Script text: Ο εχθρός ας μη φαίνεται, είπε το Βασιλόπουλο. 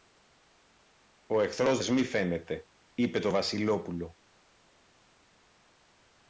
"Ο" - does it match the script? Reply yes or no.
yes